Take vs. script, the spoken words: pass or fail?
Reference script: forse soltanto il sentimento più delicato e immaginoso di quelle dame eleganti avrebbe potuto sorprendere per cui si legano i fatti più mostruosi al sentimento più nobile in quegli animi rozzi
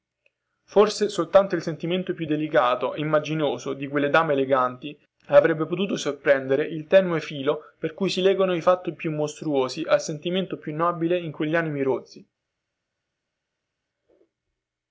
fail